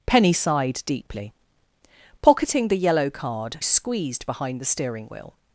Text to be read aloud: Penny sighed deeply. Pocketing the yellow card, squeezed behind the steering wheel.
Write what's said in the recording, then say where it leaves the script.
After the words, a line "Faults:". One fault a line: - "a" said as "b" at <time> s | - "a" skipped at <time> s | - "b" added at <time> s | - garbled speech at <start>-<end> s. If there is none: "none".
Penny sighed deeply. Pocketing the yellow card, squeezed behind the steering wheel.
Faults:
none